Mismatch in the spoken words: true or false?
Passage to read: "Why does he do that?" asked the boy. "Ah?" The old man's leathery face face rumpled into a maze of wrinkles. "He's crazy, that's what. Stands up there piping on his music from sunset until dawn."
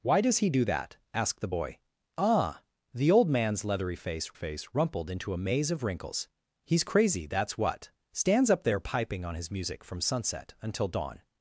false